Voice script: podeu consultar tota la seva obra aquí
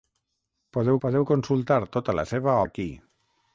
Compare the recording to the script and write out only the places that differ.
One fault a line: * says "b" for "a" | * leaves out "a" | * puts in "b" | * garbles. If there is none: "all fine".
* puts in "podeu"
* leaves out "obra"